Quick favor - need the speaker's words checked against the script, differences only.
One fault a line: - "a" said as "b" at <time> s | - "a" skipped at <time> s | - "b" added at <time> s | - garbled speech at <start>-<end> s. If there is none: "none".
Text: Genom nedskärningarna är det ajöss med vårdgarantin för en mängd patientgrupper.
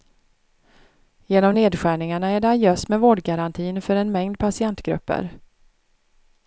none